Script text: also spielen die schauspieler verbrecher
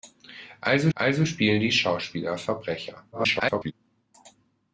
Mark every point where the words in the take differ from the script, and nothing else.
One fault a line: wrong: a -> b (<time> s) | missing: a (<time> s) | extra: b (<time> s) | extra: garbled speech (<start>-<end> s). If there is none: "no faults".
extra: also (0.9 s)
extra: garbled speech (3.1-3.7 s)